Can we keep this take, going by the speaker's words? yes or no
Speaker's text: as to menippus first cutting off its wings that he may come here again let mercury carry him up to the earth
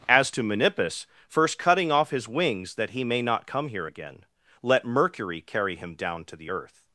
no